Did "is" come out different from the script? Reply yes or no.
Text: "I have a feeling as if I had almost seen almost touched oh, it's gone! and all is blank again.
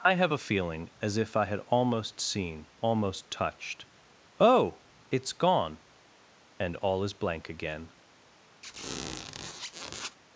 no